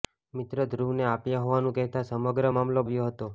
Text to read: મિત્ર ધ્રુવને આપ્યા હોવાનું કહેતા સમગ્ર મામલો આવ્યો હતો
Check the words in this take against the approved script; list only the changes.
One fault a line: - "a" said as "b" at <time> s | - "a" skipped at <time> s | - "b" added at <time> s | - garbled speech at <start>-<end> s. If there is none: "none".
none